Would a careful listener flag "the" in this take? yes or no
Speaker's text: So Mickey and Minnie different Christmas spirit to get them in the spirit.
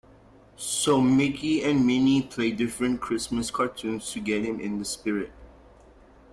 no